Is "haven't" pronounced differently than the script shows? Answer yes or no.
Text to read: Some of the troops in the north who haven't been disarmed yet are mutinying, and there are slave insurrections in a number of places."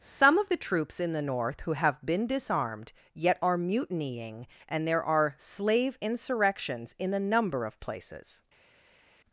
yes